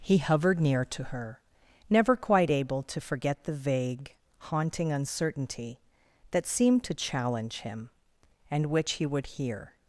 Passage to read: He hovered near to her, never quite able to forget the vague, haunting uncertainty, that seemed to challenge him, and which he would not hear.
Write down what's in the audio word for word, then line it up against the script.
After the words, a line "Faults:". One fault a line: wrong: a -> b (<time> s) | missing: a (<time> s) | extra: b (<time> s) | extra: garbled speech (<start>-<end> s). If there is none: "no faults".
He hovered near to her, never quite able to forget the vague, haunting uncertainty, that seemed to challenge him, and which he would hear.
Faults:
missing: not (9.3 s)